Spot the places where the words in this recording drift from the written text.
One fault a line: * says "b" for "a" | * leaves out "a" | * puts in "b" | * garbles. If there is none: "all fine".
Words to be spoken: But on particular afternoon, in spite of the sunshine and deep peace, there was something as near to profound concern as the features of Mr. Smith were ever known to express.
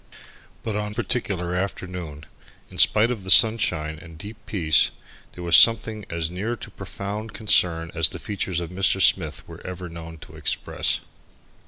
all fine